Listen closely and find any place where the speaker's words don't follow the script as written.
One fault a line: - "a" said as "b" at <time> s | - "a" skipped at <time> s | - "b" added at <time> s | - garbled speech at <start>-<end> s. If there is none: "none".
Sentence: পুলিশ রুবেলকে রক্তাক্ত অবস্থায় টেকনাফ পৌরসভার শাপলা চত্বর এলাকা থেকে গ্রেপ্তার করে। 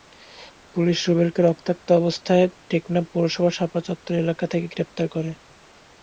none